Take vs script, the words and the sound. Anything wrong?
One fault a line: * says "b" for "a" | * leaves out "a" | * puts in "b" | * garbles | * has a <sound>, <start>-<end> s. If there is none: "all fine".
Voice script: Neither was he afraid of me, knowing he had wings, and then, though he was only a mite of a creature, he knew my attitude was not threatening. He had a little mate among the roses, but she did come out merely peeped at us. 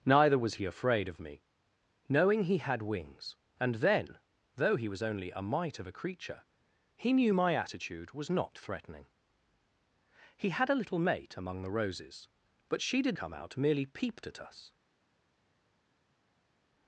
all fine